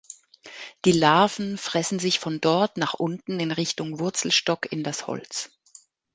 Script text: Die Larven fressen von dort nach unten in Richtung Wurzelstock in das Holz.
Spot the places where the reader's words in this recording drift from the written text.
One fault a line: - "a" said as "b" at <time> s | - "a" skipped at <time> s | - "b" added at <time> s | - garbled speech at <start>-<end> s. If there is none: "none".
- "sich" added at 2.0 s